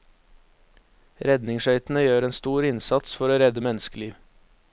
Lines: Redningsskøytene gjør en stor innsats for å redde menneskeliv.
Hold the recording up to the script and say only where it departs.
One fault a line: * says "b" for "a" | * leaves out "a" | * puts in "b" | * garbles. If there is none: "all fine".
all fine